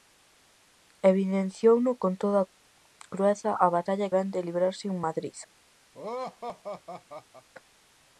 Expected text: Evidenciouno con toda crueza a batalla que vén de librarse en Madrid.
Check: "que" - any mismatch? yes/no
yes